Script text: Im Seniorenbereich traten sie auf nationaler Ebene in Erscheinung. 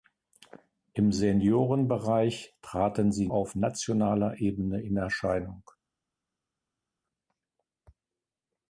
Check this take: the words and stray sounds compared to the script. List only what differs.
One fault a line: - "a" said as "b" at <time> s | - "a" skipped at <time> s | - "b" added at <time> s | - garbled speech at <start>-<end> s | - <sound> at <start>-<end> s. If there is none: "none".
none